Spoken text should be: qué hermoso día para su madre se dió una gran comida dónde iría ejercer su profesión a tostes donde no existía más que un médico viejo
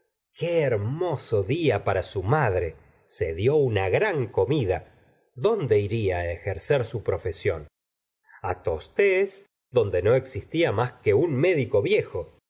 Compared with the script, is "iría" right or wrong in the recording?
right